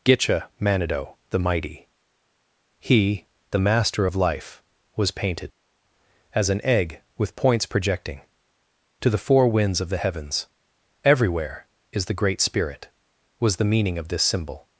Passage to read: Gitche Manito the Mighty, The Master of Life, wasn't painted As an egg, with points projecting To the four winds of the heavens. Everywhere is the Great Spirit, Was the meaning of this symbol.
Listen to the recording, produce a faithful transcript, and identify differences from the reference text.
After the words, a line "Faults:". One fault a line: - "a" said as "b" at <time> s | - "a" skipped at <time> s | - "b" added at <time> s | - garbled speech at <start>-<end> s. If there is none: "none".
Gitche Manito the Mighty, He, the Master of Life, was painted As an egg, with points projecting To the four winds of the heavens. Everywhere is the Great Spirit, Was the meaning of this symbol.
Faults:
- "He" added at 2.8 s
- "wasn't" said as "was" at 5.0 s